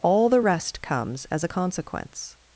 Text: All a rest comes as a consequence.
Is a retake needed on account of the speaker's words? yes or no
yes